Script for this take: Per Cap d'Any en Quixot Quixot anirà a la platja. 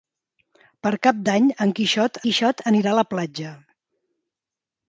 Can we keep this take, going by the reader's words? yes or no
yes